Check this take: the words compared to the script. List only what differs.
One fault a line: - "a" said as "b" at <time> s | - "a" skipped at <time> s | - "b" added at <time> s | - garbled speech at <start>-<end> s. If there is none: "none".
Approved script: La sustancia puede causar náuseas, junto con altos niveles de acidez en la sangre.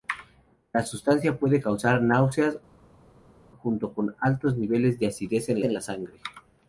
- "en" added at 5.6 s